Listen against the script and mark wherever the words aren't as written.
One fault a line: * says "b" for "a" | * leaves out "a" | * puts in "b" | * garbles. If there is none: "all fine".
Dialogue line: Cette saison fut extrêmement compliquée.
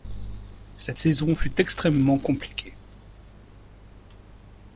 all fine